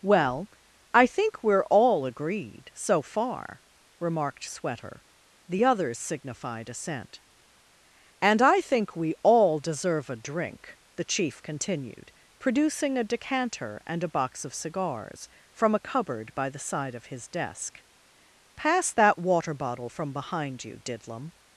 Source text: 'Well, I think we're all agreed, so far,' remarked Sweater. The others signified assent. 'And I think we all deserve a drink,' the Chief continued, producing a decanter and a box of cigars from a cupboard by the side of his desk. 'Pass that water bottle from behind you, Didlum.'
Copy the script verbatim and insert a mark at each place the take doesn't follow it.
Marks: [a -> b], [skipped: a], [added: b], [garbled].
'Well, I think we're all agreed, so far,' remarked Sweater. The others signified assent. 'And I think we all deserve a drink,' the Chief continued, producing a decanter and a box of cigars from a cupboard by the side of his desk. 'Pass that water bottle from behind you, Didlum.'